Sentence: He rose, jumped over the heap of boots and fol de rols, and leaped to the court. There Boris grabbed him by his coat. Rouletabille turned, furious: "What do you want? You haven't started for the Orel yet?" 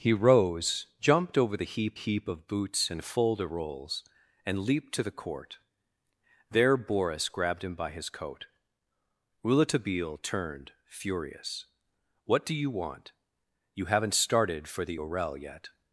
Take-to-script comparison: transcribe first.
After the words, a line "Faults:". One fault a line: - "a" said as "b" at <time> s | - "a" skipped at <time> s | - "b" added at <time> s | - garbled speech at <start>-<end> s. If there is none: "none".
He rose, jumped over the heap heap of boots and fol de rols, and leaped to the court. There Boris grabbed him by his coat. Rouletabille turned, furious: "What do you want? You haven't started for the Orel yet?"
Faults:
- "heap" added at 1.9 s